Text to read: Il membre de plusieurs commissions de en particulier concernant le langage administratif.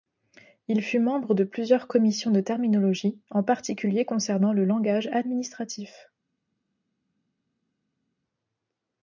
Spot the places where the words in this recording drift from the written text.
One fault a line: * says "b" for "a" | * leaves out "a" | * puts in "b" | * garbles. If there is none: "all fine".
* puts in "fut"
* puts in "terminologie"